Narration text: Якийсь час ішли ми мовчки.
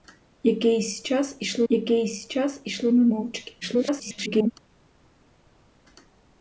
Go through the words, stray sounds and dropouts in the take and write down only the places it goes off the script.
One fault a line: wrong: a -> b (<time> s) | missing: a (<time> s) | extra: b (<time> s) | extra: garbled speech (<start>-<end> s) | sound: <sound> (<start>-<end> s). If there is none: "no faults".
extra: якийсь час ішли (1.7 s)
extra: garbled speech (3.6-4.5 s)